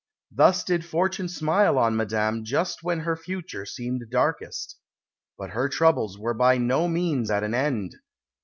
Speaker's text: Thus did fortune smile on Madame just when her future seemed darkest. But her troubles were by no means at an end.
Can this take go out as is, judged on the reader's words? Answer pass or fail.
pass